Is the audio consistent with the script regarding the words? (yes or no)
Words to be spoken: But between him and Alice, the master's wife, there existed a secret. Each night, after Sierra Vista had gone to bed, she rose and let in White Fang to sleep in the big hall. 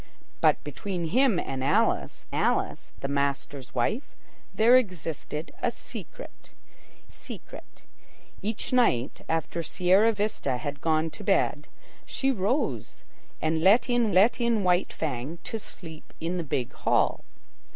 no